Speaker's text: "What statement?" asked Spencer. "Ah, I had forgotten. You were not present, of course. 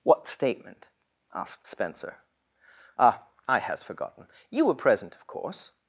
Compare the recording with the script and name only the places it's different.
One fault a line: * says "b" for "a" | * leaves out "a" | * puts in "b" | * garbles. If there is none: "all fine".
* says "has" for "had"
* leaves out "not"